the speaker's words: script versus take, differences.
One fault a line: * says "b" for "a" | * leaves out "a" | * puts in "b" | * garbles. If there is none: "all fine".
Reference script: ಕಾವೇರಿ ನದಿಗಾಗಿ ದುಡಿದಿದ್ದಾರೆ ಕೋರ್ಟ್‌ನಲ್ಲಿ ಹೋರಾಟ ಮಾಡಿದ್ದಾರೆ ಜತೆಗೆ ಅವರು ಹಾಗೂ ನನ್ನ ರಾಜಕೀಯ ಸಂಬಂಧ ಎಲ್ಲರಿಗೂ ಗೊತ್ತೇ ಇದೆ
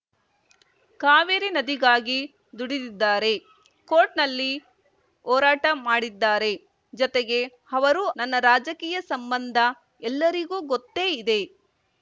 * leaves out "ಹಾಗೂ"